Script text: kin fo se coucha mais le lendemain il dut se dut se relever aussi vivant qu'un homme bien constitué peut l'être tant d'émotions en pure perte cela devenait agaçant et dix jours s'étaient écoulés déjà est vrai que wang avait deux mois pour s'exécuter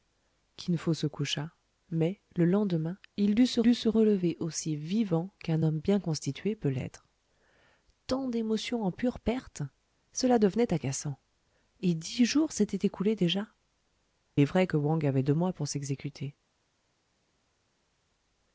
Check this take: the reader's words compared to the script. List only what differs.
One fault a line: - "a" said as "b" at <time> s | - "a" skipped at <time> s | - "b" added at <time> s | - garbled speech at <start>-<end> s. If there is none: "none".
none